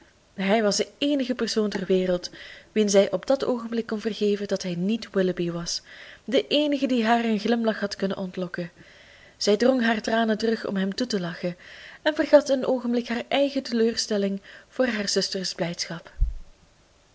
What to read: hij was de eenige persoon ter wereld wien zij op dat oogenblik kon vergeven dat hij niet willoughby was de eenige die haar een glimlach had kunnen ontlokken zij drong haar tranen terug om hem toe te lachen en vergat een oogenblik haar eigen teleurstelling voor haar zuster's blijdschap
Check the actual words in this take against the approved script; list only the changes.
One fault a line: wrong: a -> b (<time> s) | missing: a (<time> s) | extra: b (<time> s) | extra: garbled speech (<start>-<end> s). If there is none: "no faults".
no faults